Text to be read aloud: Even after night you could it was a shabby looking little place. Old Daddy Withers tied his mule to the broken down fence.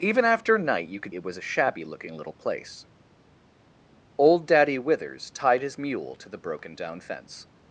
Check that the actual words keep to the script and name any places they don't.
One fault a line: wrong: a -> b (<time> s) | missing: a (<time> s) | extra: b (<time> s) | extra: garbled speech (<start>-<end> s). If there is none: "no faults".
no faults